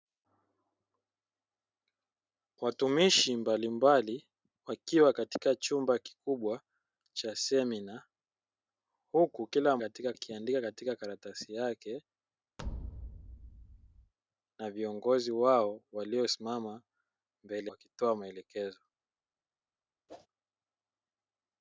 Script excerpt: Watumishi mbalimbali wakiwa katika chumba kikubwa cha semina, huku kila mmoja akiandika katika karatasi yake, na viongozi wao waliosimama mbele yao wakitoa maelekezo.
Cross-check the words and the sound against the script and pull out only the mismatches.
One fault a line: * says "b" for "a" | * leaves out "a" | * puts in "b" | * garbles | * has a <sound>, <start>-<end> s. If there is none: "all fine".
* says "katika" for "mmoja"
* has a thud, 12.6-14.1 s
* leaves out "yao"
* has a whoosh, 20.1-20.3 s